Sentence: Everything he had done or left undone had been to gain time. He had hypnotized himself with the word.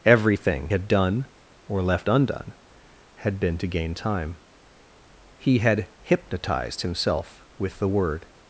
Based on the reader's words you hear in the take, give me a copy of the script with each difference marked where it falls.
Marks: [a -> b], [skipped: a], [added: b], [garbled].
Everything [skipped: he] had done or left undone had been to gain time. He had hypnotized himself with the word.